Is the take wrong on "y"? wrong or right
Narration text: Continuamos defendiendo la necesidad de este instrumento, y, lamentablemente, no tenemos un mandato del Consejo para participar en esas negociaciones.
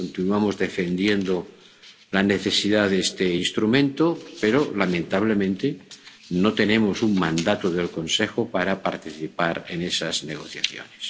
wrong